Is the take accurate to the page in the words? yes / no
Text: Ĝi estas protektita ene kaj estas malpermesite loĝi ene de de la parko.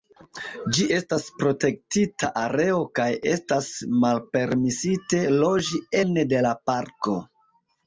no